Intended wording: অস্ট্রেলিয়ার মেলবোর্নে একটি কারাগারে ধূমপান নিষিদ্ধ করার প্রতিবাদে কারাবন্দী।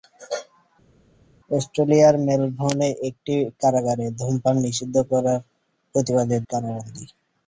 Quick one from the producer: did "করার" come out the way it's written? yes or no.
yes